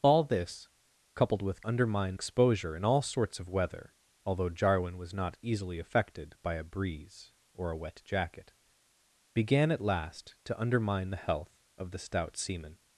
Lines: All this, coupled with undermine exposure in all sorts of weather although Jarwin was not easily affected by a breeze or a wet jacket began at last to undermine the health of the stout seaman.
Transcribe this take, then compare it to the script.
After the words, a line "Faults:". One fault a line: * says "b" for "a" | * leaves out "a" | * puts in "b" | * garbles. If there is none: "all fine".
All this, coupled with undermine exposure in all sorts of weather although Jarwin was not easily affected by a breeze or a wet jacket began at last to undermine the health of the stout seaman.
Faults:
all fine